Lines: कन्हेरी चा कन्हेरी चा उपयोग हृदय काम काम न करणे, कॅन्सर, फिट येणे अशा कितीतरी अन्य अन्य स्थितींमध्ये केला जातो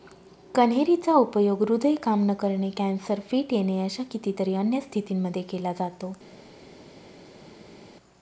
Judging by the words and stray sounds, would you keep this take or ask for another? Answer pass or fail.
fail